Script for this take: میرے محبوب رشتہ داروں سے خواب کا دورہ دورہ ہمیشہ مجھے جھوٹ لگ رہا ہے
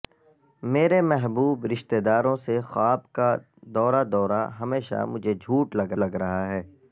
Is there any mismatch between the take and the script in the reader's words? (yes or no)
yes